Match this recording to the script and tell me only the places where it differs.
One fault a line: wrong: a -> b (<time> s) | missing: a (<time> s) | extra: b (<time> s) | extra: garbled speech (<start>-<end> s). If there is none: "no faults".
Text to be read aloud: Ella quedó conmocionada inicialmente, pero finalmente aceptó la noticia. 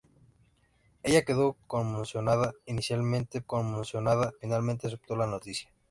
wrong: pero -> conmocionada (3.5 s)